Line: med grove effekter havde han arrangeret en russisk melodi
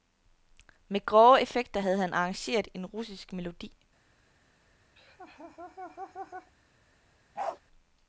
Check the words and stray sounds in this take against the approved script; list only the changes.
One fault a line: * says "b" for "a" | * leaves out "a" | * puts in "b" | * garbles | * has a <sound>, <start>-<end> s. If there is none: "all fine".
* has a laugh, 5.0-6.5 s
* has a bark, 7.4-7.6 s